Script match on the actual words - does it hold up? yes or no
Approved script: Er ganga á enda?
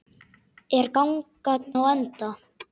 yes